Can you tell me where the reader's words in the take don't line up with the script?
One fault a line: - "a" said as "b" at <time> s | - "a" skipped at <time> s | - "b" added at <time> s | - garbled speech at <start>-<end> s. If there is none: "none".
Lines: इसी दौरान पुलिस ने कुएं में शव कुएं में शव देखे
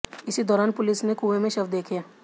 - "कुएं में शव" skipped at 1.7 s